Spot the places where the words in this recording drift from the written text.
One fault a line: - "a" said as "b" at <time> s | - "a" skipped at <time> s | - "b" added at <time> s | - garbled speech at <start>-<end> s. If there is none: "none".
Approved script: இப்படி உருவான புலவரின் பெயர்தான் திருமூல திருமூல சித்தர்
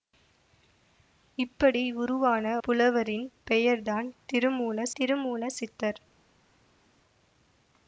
none